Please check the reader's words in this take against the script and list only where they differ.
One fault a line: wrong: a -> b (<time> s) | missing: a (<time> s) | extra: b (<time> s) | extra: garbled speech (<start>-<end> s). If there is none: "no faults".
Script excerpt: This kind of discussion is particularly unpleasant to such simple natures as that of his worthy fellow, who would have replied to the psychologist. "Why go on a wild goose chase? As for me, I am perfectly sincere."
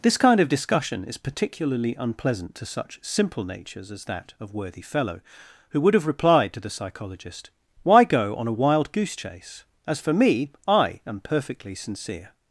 missing: his (4.5 s)